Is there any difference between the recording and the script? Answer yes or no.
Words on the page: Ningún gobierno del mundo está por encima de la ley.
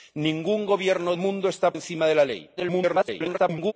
yes